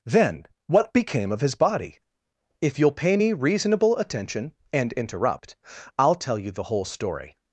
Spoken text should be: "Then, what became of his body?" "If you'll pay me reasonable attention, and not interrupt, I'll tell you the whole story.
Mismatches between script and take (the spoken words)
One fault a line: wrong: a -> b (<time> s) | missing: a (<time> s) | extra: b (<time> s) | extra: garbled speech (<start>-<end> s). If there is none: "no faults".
missing: not (4.9 s)